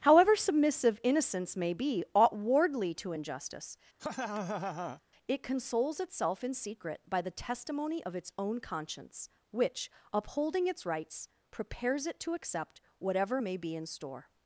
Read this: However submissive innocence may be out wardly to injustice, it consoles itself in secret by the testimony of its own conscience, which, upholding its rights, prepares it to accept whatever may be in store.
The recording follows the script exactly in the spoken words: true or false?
false